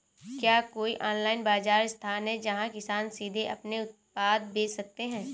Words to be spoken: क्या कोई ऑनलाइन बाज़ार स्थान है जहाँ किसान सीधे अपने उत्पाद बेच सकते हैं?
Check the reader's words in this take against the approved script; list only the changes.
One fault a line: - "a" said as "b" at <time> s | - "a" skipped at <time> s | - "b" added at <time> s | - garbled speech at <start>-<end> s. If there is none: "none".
none